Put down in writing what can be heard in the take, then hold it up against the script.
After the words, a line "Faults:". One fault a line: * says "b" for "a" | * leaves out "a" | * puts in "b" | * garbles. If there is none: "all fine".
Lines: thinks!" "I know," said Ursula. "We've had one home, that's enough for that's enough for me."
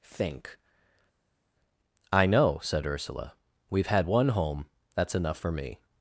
think!" "I know," said Ursula. "We've had one home, that's enough for me."
Faults:
* says "think" for "thinks"
* leaves out "that's enough for"